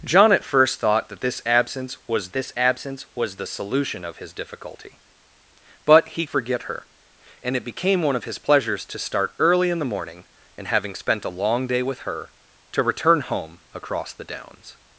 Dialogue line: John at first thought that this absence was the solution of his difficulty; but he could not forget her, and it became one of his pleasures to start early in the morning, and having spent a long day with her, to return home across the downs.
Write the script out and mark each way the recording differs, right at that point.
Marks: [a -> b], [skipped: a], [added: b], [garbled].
John at first thought that this absence was [added: this absence was] the solution of his difficulty; but he [skipped: could not] forget her, and it became one of his pleasures to start early in the morning, and having spent a long day with her, to return home across the downs.